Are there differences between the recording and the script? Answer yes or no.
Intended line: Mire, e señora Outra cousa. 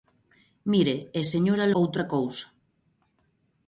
no